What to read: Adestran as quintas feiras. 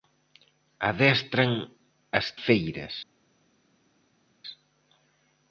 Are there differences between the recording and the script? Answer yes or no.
yes